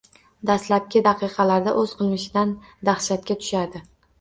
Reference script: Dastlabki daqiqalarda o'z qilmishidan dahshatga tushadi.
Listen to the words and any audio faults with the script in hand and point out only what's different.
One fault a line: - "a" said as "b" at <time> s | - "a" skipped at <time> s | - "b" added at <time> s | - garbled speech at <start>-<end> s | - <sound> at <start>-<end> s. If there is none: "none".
none